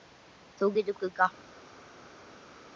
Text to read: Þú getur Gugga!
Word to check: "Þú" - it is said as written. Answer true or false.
true